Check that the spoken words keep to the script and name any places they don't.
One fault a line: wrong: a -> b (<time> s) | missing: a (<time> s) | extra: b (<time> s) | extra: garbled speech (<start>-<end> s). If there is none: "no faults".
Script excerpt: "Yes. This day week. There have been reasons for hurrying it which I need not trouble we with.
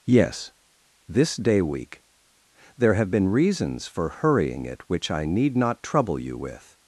wrong: we -> you (6.2 s)